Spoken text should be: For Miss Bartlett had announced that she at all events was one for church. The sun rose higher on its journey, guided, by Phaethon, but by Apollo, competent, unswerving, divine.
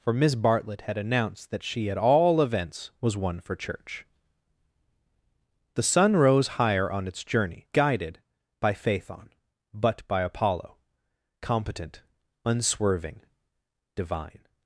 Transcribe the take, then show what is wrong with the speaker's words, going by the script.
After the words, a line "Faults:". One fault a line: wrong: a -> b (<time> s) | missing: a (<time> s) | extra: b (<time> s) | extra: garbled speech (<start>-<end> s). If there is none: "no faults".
For Miss Bartlett had announced that she at all events was one for church. The sun rose higher on its journey, guided, by Phaethon, but by Apollo, competent, unswerving, divine.
Faults:
no faults